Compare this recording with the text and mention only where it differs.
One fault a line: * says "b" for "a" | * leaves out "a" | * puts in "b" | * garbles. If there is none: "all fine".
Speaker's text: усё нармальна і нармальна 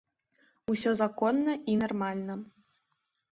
* says "законна" for "нармальна"